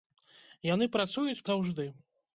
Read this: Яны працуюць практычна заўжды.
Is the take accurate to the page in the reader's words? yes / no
no